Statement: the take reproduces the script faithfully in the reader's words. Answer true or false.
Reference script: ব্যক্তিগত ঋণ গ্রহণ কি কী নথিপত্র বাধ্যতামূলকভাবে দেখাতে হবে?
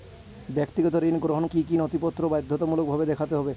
true